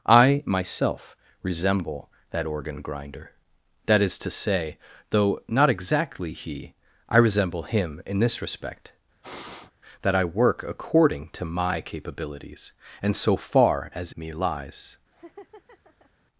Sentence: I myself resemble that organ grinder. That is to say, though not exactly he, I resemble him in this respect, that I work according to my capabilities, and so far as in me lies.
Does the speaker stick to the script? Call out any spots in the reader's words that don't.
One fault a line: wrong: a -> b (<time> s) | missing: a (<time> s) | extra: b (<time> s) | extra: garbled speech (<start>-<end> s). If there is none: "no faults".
missing: in (14.1 s)